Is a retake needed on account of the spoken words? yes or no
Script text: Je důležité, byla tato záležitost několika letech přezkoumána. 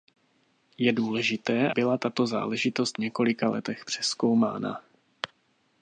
no